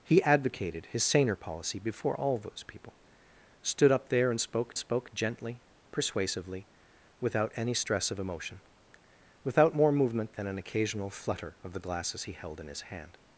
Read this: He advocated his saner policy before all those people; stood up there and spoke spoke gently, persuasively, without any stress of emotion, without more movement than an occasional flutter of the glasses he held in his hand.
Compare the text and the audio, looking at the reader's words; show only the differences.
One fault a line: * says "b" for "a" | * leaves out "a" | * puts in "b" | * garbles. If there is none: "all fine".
all fine